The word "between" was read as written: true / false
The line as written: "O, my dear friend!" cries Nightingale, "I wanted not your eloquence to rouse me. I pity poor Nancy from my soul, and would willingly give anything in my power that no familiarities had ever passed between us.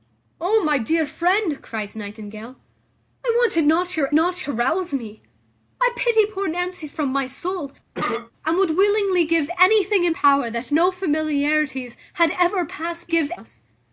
false